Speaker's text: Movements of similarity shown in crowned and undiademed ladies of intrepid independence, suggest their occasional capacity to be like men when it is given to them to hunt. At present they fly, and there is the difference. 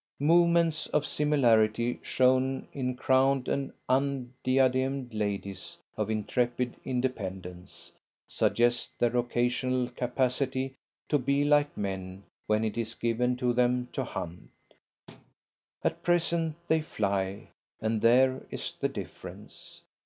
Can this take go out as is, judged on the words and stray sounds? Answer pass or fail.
fail